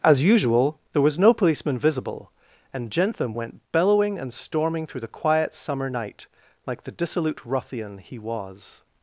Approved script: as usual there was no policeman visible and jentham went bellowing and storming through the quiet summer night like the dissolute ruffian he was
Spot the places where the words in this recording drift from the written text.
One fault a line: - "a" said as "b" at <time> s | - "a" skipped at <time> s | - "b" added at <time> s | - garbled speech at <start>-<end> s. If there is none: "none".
none